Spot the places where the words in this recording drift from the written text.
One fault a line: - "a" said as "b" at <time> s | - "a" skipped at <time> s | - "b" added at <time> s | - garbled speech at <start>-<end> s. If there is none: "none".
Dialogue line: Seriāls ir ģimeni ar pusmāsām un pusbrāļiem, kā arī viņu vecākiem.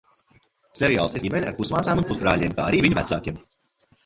none